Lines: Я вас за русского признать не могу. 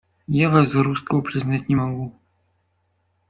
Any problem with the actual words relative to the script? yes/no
no